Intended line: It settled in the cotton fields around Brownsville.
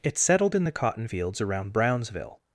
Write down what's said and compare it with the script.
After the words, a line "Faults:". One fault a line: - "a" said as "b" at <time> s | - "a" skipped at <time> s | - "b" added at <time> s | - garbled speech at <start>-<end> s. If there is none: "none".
It settled in the cotton fields around Brownsville.
Faults:
none